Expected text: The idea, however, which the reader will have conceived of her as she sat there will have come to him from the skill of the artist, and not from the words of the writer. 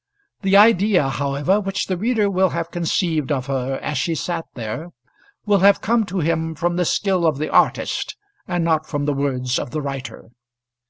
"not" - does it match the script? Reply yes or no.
yes